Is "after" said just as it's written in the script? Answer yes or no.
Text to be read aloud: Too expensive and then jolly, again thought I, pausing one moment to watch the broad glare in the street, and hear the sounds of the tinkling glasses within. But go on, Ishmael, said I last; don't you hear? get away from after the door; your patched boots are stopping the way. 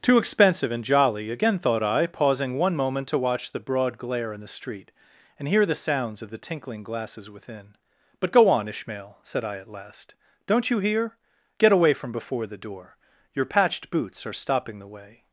no